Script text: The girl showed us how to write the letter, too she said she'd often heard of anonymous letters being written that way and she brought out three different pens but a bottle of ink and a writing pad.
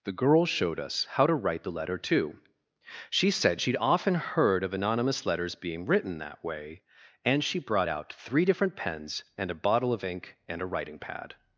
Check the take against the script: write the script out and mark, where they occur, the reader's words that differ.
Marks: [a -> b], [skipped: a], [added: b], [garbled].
The girl showed us how to write the letter, too she said she'd often heard of anonymous letters being written that way and she brought out three different pens [but -> and] a bottle of ink and a writing pad.